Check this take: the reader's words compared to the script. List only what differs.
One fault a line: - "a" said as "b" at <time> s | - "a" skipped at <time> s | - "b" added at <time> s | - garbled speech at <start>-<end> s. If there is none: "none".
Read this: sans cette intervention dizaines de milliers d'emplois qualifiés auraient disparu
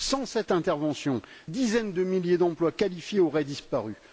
none